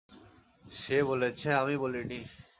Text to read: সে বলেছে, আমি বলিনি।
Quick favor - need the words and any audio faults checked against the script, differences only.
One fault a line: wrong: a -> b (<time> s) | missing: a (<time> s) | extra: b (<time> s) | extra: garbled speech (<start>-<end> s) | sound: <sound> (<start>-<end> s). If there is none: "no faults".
no faults